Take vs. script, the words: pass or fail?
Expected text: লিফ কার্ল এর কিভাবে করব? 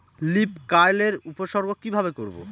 fail